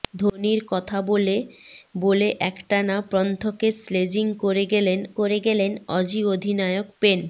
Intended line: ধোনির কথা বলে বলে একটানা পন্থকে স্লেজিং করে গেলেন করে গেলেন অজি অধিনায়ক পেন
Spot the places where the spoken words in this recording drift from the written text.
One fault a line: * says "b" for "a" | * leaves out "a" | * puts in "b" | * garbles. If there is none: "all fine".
all fine